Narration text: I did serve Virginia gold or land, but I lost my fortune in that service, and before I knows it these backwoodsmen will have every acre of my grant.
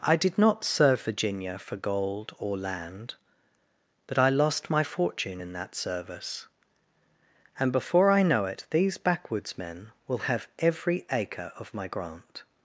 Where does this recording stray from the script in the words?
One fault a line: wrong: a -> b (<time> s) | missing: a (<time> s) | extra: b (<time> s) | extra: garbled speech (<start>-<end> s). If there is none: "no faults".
extra: not (0.4 s)
extra: for (1.6 s)
wrong: knows -> know (8.2 s)